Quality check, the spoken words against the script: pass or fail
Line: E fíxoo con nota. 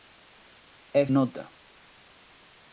fail